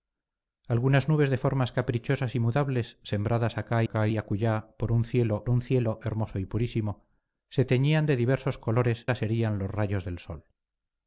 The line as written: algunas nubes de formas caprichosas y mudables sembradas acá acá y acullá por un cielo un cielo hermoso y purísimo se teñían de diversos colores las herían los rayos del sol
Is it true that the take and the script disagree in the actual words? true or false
false